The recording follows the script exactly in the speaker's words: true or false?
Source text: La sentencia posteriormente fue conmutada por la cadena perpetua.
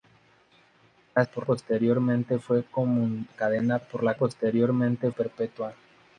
false